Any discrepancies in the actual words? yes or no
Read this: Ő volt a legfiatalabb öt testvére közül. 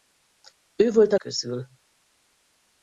yes